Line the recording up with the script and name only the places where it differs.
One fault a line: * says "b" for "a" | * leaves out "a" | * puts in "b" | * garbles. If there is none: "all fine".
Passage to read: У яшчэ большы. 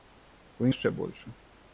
all fine